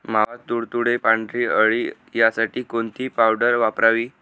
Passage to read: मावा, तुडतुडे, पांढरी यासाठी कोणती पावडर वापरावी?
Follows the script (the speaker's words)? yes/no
no